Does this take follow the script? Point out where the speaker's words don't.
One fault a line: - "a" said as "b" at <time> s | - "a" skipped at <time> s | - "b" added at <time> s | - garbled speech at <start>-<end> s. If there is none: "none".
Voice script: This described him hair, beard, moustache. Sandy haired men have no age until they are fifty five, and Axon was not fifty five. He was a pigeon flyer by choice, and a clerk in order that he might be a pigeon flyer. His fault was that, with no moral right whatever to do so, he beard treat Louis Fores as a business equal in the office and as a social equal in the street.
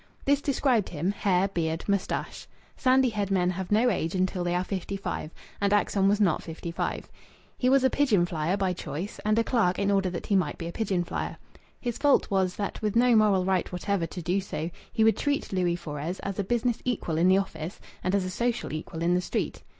- "beard" said as "would" at 15.0 s